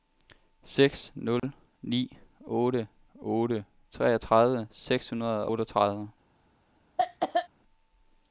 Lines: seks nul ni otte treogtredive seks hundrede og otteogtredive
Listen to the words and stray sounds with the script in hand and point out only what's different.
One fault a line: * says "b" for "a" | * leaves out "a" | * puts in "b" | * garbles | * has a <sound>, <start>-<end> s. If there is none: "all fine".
* has a dropout, 1.4-1.4 s
* puts in "otte"
* leaves out "og"
* has a cough, 7.0-7.5 s